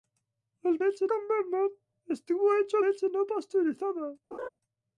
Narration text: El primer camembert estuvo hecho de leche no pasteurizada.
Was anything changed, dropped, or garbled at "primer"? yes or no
yes